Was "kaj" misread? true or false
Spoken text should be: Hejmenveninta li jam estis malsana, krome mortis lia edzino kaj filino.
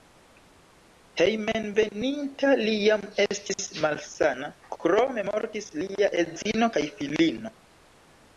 false